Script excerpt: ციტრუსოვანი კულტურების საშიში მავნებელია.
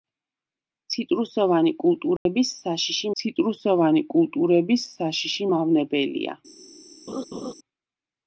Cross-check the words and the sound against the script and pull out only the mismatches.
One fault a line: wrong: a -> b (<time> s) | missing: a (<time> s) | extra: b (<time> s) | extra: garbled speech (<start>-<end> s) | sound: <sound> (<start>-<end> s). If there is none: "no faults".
sound: dropout (2.2-2.3 s)
extra: ციტრუსოვანი კულტურების საშიში (3.2 s)
sound: laugh (7.1-7.5 s)